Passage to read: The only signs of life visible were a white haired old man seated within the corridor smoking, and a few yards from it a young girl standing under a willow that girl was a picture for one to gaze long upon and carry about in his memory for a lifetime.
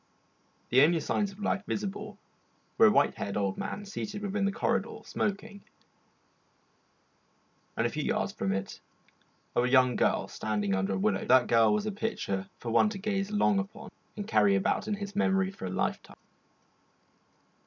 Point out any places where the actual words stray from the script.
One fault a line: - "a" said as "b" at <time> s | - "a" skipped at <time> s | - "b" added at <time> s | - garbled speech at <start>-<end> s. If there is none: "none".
none